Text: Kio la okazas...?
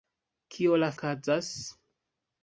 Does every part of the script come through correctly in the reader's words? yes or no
yes